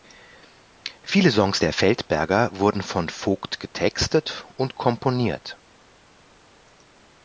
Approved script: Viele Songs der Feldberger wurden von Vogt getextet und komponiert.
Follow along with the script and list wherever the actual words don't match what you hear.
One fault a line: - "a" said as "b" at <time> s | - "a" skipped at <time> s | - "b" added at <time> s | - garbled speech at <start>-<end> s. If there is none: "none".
none